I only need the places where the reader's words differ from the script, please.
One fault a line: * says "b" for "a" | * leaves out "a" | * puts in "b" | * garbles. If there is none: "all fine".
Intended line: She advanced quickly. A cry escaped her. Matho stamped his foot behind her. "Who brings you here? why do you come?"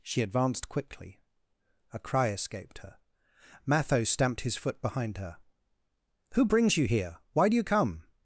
all fine